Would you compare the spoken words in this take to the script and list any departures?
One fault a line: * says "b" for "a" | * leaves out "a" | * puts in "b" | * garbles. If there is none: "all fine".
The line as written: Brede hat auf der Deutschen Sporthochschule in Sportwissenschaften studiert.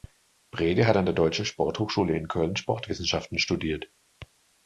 * says "an" for "auf"
* puts in "Köln"